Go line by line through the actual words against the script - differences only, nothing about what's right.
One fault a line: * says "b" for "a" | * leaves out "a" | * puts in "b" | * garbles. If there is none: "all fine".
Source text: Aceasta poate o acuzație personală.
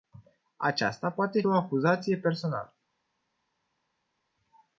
all fine